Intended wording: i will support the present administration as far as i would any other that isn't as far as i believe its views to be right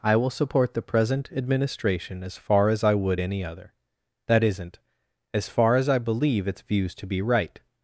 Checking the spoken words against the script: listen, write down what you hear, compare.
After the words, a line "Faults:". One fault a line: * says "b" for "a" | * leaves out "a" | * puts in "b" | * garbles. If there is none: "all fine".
i will support the present administration as far as i would any other that isn't as far as i believe its views to be right
Faults:
all fine